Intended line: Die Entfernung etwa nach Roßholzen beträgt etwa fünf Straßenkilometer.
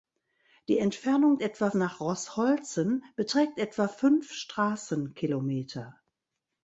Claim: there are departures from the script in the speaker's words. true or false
false